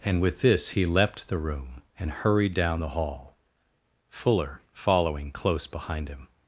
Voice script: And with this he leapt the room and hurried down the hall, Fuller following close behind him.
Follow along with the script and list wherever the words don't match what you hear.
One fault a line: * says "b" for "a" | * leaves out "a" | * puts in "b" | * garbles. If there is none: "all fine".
all fine